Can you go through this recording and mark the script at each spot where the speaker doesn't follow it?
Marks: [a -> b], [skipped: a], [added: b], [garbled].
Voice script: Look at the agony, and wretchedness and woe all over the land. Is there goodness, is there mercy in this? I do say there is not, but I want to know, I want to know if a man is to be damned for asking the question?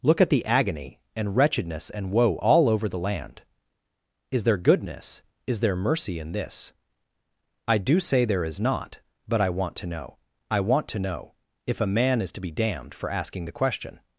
Look at the agony, and wretchedness and woe all over the land. Is there goodness, is there mercy in this? I do say there is not, but I want to know, I want to know if a man is to be damned for asking the question?